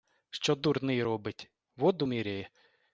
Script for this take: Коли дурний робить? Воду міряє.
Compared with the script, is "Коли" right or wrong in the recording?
wrong